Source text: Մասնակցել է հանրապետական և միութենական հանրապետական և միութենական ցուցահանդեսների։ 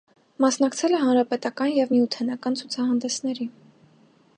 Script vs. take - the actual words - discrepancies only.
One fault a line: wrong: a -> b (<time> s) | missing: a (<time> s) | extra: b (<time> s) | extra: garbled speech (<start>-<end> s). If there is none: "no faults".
missing: հանրապետական և միութենական (2.6 s)